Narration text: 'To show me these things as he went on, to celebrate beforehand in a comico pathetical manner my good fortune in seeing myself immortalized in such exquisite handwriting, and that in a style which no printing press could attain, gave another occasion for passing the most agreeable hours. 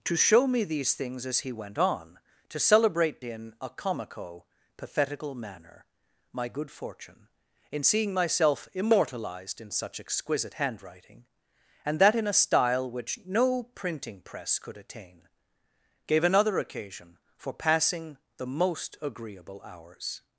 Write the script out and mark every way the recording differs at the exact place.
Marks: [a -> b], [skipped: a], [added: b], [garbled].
'To show me these things as he went on, to celebrate [skipped: beforehand] in a comico pathetical manner my good fortune in seeing myself immortalized in such exquisite handwriting, and that in a style which no printing press could attain, gave another occasion for passing the most agreeable hours.